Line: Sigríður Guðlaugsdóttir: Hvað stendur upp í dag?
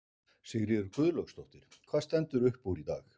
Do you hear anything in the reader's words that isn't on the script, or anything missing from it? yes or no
yes